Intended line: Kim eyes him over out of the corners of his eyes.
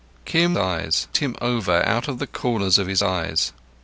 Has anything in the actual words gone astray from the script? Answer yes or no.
no